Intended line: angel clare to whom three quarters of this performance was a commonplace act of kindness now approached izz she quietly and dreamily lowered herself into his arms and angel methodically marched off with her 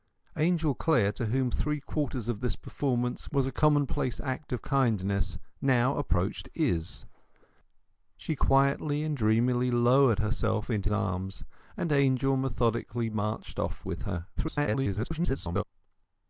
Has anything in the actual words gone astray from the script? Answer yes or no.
yes